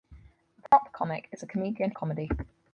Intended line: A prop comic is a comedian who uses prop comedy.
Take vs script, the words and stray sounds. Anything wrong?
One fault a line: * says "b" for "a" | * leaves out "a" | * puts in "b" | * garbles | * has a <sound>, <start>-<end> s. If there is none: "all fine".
* has a dropout, 0.7-0.7 s
* leaves out "who uses prop"